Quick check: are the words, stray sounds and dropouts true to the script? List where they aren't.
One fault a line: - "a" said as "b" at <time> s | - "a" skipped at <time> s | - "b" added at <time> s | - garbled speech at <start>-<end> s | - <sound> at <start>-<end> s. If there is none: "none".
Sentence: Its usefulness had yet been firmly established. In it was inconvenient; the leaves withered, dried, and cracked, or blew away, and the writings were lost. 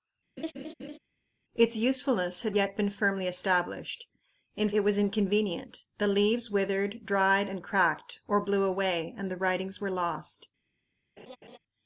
- laugh at 0.4-1.0 s
- laugh at 11.2-11.6 s